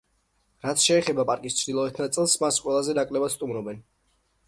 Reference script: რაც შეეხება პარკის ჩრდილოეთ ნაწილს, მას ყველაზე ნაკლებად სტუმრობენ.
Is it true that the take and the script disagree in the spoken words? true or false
false